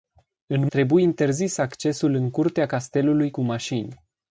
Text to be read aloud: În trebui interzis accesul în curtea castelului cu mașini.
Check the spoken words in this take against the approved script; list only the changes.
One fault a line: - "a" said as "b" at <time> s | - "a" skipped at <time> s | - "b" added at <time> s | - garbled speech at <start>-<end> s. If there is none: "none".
none